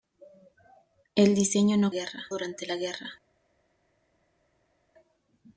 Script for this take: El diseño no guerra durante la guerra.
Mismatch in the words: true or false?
false